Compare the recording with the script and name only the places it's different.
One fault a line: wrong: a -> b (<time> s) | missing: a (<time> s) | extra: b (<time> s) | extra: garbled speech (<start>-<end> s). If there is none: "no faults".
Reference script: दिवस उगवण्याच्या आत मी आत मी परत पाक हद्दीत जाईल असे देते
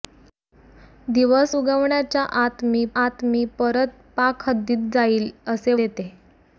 no faults